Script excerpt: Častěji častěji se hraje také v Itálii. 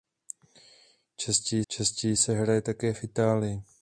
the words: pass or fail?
pass